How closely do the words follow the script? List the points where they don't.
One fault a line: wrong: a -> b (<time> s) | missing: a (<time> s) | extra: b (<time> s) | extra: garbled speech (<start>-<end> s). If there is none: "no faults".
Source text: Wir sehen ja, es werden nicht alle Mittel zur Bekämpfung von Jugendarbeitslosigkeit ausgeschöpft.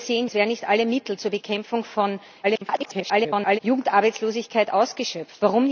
missing: ja (0.3 s)
extra: garbled speech (2.4-3.6 s)